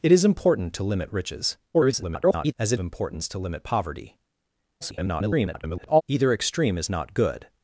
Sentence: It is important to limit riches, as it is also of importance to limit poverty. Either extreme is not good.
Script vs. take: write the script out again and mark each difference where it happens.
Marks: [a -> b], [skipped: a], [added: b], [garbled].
It is important to limit riches, [garbled] as it [skipped: is also of] importance to limit poverty. [garbled] Either extreme is not good.